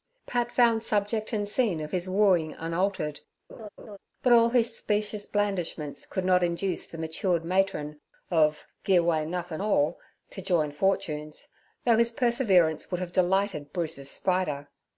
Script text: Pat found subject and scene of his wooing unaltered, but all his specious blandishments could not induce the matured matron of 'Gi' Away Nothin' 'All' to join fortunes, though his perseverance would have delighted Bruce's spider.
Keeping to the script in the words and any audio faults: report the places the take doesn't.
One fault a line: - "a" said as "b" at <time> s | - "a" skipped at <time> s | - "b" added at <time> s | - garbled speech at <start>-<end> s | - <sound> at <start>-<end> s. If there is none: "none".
- laugh at 3.5-4.0 s